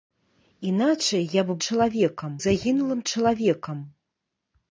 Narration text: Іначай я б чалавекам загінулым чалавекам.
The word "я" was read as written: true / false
true